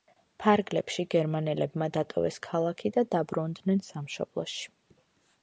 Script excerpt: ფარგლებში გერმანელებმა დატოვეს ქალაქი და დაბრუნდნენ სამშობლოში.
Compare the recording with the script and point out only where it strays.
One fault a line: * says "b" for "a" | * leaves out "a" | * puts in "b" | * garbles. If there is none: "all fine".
all fine